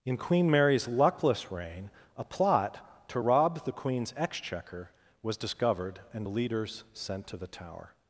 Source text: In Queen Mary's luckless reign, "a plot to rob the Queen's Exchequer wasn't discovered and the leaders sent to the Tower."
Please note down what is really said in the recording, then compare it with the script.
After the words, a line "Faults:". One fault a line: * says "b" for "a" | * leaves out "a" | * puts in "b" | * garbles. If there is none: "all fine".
In Queen Mary's luckless reign, "a plot to rob the Queen's Exchequer was discovered and the leaders sent to the Tower."
Faults:
* says "was" for "wasn't"